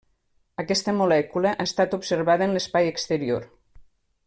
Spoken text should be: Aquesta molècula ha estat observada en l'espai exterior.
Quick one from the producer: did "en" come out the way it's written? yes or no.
yes